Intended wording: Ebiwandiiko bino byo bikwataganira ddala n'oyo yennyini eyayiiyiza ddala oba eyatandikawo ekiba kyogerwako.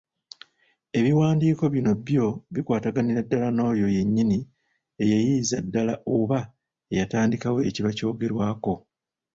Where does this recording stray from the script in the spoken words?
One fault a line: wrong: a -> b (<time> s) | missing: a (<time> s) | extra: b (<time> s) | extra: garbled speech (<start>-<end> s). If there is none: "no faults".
no faults